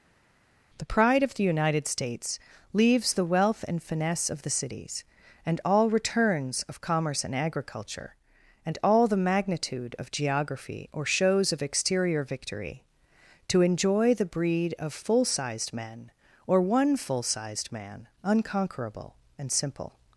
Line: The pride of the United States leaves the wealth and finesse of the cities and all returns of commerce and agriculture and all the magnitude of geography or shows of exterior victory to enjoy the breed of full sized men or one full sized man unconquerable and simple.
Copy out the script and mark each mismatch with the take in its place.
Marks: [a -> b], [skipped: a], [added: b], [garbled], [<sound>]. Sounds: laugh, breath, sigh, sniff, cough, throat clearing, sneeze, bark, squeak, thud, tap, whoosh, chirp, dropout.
The pride of the United States leaves the wealth and finesse of the cities and all returns of commerce and agriculture and all the magnitude of geography or shows of exterior victory to enjoy the breed of full sized men or one full sized man unconquerable and simple.